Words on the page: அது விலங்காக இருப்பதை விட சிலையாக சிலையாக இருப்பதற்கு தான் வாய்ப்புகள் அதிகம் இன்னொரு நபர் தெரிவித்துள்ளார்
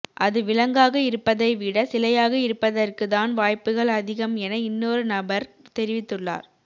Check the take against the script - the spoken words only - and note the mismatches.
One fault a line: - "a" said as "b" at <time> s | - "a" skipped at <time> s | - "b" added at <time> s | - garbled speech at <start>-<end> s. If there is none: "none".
- "சிலையாக" skipped at 2.3 s
- "என" added at 4.4 s